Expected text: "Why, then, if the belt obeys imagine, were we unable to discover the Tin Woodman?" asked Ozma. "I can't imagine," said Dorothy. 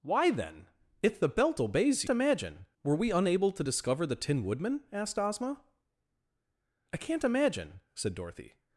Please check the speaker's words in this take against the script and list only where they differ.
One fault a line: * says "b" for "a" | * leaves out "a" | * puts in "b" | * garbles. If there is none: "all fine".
all fine